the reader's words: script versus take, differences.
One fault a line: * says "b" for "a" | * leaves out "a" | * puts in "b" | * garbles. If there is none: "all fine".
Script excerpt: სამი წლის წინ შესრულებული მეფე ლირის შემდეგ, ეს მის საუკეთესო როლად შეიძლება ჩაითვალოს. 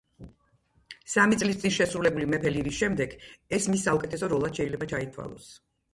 all fine